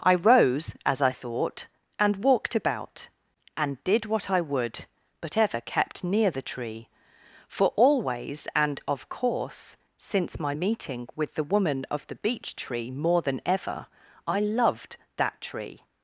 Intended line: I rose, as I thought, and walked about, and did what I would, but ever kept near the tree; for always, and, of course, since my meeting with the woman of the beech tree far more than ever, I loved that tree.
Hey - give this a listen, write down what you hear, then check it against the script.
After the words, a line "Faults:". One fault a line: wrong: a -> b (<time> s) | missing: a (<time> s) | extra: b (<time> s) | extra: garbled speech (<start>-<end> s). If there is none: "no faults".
I rose, as I thought, and walked about, and did what I would, but ever kept near the tree; for always, and, of course, since my meeting with the woman of the beech tree more than ever, I loved that tree.
Faults:
missing: far (12.9 s)